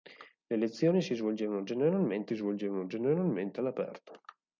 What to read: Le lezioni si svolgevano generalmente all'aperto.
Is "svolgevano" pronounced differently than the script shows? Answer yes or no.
no